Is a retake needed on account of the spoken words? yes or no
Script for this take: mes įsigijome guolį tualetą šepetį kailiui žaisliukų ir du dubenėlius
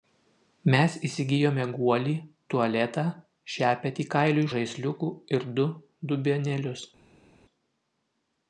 no